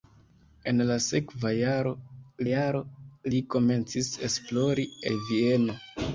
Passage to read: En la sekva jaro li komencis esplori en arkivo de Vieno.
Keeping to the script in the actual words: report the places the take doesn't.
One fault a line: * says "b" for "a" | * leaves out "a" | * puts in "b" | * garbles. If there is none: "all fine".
* puts in "jaro"
* leaves out "en arkivo"